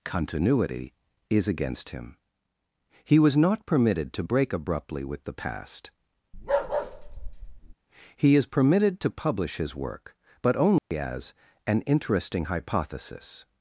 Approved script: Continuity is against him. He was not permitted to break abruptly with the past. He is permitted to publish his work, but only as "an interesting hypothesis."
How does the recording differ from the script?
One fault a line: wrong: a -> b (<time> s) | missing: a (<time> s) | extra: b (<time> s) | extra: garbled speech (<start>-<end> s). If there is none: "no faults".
no faults